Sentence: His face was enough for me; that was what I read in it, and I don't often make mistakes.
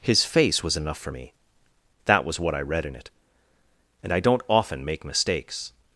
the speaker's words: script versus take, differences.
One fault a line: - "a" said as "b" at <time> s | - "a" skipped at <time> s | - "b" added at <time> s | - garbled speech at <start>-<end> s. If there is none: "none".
none